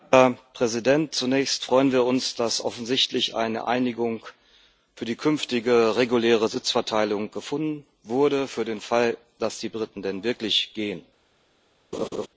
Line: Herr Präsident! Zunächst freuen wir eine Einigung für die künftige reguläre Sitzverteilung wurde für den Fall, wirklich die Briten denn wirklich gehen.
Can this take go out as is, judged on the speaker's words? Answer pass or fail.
fail